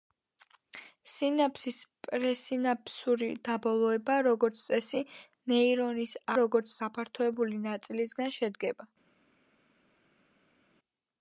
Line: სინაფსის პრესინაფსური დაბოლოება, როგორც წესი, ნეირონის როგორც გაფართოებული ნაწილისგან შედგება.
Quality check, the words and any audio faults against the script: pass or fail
pass